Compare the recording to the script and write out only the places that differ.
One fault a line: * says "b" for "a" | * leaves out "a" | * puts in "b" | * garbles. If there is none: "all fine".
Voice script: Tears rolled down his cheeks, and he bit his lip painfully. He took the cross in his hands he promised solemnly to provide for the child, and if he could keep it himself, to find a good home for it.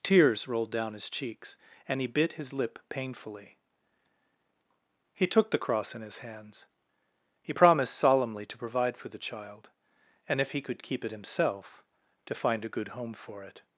all fine